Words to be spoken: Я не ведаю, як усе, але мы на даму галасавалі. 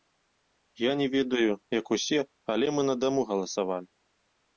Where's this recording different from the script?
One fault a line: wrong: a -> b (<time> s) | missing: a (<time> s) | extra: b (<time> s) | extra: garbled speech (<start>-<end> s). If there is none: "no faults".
no faults